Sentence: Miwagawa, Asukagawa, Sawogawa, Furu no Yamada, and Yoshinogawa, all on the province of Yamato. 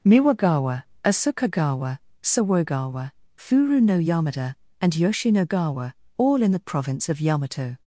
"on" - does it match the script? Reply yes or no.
no